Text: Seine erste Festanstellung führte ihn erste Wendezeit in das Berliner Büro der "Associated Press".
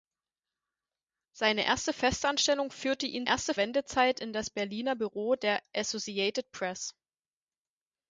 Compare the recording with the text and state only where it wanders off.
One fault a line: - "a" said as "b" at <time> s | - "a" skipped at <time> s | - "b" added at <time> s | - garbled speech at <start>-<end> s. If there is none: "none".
none